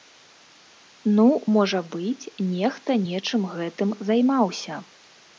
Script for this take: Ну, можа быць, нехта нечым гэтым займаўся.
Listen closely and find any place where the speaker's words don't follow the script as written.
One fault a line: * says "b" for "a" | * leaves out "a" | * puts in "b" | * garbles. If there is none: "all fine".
all fine